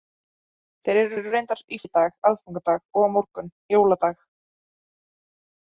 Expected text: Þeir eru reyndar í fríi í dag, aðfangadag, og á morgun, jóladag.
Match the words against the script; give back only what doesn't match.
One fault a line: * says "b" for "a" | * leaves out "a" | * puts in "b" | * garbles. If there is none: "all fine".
* puts in "eru"
* leaves out "fríi"